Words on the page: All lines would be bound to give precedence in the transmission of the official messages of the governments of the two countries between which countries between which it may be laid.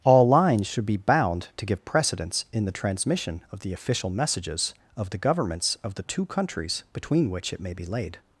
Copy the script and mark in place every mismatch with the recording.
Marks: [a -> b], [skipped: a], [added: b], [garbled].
All lines [would -> should] be bound to give precedence in the transmission of the official messages of the governments of the two countries between which [skipped: countries between which] it may be laid.